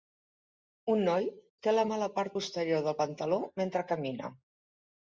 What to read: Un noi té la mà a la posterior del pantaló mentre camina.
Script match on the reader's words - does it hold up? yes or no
no